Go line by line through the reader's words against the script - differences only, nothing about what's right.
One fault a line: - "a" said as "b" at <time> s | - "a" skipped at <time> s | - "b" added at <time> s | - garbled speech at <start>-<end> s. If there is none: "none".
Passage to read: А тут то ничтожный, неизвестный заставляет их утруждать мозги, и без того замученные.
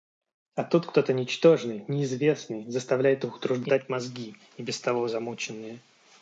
- "кто" added at 0.9 s